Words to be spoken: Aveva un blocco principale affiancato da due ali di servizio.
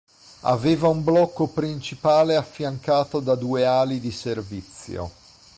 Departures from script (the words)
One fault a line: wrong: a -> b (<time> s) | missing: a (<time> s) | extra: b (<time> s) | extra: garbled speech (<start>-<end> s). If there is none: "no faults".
no faults